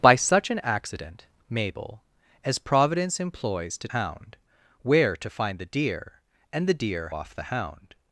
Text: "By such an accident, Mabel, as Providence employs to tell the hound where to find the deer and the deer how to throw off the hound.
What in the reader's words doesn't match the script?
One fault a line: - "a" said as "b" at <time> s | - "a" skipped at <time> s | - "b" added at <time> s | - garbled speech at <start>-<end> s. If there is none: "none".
- "tell the" skipped at 3.9 s
- "how to throw" skipped at 7.1 s